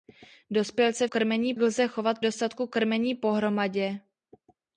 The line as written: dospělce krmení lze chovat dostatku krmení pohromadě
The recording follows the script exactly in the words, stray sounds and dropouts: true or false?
true